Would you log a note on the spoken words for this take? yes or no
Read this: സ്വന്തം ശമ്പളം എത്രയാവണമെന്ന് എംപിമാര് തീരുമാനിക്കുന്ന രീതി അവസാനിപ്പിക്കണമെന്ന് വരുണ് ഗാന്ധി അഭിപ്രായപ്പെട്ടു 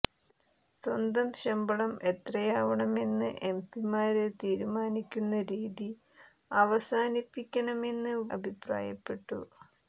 yes